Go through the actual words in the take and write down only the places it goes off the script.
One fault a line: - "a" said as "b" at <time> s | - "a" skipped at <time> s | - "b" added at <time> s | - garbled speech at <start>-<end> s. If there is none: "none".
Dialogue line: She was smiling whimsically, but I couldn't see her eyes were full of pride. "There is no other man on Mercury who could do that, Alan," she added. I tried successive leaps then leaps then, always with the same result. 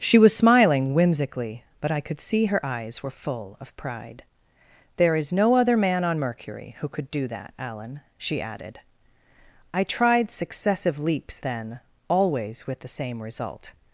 - "couldn't" said as "could" at 2.0 s
- "leaps then" skipped at 11.8 s